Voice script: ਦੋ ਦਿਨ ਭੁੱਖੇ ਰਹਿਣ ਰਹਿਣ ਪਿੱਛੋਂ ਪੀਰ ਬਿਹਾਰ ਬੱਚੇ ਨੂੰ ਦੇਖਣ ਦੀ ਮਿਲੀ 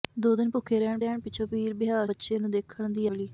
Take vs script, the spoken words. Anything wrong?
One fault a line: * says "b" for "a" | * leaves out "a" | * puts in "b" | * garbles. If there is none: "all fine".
all fine